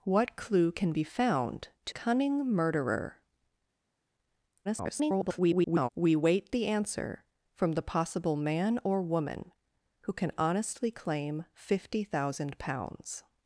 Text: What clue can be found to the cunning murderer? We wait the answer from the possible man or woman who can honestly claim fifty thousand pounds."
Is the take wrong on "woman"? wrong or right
right